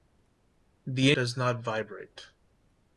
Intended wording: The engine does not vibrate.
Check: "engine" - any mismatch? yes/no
yes